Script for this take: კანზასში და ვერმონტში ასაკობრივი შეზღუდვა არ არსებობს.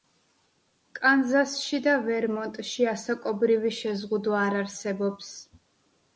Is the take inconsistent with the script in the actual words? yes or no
no